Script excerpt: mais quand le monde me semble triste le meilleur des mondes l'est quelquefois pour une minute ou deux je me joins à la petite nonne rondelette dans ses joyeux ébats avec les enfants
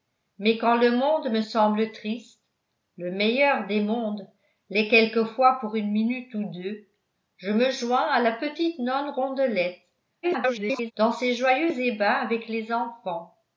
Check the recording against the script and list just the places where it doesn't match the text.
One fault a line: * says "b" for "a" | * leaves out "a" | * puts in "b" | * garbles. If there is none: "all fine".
* garbles